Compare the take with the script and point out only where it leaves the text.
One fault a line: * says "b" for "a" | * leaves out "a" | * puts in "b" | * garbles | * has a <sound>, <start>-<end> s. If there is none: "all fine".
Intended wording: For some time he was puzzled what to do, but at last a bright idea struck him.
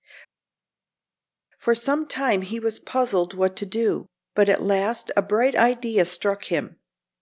all fine